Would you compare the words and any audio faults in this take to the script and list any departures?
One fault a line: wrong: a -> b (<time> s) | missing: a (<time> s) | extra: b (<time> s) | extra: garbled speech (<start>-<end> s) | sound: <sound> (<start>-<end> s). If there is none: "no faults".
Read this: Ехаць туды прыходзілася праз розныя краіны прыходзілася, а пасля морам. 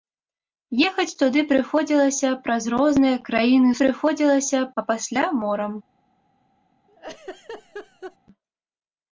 sound: laugh (6.9-8.2 s)